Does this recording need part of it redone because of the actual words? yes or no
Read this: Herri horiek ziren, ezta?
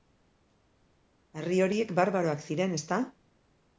yes